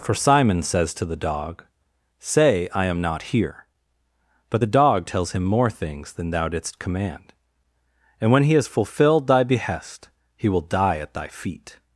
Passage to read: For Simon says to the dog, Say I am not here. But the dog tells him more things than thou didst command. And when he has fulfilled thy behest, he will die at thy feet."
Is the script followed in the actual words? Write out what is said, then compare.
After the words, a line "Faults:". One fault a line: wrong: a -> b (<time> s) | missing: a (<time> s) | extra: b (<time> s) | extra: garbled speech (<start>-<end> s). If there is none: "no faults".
For Simon says to the dog, Say I am not here. But the dog tells him more things than thou didst command. And when he has fulfilled thy behest, he will die at thy feet."
Faults:
no faults